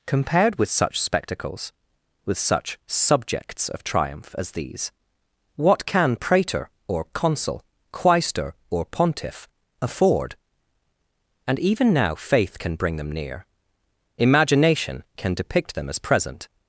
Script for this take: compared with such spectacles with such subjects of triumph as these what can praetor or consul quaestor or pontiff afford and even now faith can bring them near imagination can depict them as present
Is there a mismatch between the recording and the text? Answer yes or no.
no